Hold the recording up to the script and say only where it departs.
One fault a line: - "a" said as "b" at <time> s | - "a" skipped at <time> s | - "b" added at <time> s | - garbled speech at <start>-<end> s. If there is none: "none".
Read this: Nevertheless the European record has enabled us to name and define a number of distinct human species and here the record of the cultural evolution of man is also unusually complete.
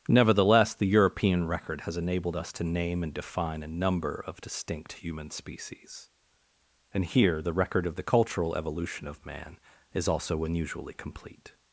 none